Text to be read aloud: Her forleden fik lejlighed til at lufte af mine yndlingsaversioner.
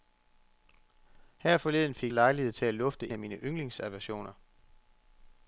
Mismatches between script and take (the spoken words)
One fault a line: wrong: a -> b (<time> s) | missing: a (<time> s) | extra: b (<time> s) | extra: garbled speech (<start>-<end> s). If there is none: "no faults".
no faults